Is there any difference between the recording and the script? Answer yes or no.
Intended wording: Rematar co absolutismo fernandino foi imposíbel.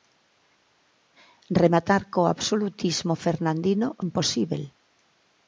yes